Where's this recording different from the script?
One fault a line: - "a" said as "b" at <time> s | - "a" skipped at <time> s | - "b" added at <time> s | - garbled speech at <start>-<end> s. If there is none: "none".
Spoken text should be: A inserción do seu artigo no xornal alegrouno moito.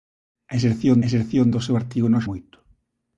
- "inserción" added at 1.1 s
- "xornal alegrouno" skipped at 2.2 s